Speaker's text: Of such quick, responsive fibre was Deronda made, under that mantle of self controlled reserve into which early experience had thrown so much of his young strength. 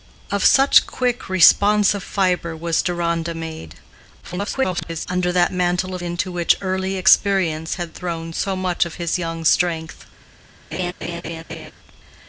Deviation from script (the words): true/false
true